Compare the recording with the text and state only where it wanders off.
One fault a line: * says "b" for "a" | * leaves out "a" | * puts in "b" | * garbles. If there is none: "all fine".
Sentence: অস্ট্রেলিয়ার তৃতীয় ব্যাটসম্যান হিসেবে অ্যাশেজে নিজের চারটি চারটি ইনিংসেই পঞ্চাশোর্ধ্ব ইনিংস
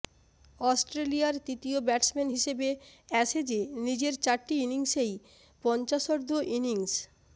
* leaves out "চারটি"